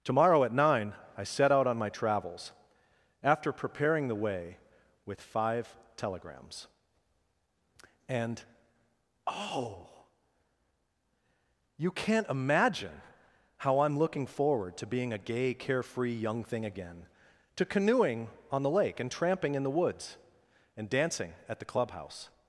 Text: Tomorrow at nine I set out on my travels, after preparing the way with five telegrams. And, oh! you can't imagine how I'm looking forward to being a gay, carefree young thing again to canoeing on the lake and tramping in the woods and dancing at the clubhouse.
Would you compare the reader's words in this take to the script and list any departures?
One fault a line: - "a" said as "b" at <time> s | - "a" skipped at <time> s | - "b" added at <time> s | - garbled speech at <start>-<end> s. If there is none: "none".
none